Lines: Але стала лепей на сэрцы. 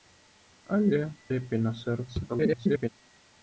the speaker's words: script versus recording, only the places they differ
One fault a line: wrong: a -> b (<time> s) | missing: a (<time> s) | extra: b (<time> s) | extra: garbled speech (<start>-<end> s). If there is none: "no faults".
missing: стала (1.0 s)
extra: garbled speech (2.3-2.9 s)